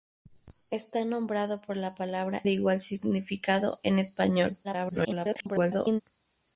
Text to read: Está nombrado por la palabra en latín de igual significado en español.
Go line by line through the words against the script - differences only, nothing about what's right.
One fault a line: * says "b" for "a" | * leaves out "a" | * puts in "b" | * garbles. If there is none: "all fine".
* leaves out "en latín"
* garbles